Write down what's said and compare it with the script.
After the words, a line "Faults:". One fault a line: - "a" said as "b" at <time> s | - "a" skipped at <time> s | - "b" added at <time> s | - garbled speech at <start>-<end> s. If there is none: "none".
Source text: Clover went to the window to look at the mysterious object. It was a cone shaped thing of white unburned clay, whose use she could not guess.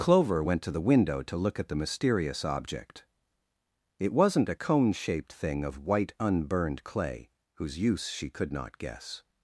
Clover went to the window to look at the mysterious object. It wasn't a cone shaped thing of white unburned clay, whose use she could not guess.
Faults:
- "was" said as "wasn't" at 4.1 s